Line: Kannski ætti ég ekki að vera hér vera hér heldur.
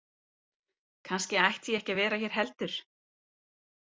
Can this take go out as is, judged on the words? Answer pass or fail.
fail